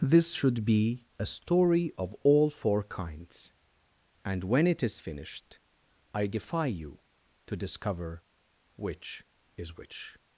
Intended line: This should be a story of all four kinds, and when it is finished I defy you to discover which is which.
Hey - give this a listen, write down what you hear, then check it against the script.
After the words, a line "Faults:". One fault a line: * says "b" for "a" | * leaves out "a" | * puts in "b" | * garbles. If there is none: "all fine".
This should be a story of all four kinds, and when it is finished I defy you to discover which is which.
Faults:
all fine